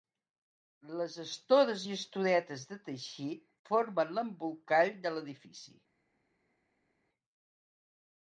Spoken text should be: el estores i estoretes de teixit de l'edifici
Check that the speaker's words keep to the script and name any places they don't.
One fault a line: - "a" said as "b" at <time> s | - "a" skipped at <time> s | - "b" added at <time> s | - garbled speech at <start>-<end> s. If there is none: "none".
- "el" said as "les" at 1.0 s
- "formen l'embolcall" added at 3.7 s